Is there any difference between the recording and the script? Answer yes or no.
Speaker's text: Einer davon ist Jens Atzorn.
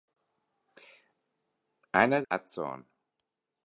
yes